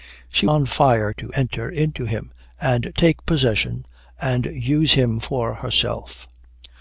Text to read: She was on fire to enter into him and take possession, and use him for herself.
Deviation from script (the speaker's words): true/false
true